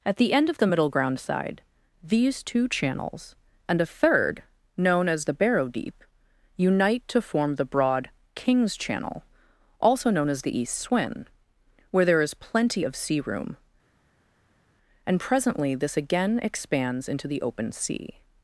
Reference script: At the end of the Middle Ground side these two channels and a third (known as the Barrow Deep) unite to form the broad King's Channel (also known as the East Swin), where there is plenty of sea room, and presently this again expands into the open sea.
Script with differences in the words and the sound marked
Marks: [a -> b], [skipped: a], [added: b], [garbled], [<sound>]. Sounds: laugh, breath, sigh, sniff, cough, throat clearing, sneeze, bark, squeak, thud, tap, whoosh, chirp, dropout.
At the end of the Middle Ground side these two channels and a third (known as the Barrow Deep) unite to form the broad King's Channel (also known as the East Swin), where there is plenty of sea room, and presently this again expands into the open sea.